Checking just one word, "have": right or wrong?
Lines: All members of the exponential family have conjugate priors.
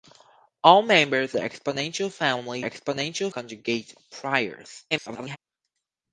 wrong